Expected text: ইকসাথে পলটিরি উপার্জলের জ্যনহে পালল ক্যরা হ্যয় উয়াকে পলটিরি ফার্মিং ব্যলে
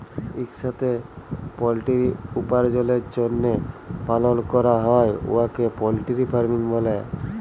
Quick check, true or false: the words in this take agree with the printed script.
true